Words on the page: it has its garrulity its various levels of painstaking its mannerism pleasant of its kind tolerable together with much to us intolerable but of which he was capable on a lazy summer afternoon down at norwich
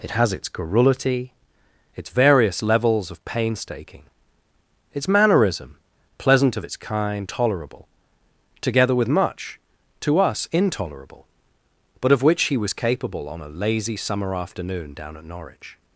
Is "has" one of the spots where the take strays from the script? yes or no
no